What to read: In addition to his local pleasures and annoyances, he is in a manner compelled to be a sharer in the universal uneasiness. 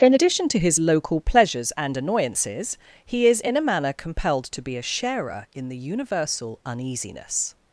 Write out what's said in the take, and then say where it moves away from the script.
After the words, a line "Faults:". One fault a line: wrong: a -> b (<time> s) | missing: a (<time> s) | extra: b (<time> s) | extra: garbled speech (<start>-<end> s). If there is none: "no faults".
In addition to his local pleasures and annoyances, he is in a manner compelled to be a sharer in the universal uneasiness.
Faults:
no faults